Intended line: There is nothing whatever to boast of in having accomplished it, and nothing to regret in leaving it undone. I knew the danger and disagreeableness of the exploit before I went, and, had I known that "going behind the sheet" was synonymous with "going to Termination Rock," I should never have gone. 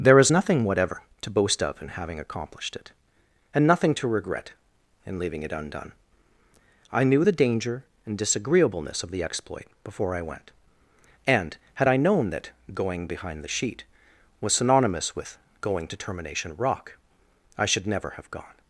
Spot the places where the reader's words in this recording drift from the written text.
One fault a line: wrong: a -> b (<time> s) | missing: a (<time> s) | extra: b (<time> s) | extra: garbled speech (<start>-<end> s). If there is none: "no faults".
no faults